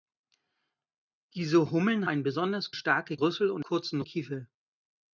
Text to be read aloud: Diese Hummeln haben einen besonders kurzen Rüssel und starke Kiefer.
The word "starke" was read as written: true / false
false